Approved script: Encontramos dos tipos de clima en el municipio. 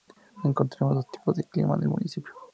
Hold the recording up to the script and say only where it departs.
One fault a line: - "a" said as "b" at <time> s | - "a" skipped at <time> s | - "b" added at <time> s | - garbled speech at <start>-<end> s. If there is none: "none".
none